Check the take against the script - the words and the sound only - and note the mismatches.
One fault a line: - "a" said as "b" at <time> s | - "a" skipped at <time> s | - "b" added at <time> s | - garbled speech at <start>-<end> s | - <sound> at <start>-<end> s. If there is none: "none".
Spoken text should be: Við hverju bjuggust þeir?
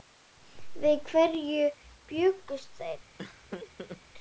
- laugh at 3.2-4.0 s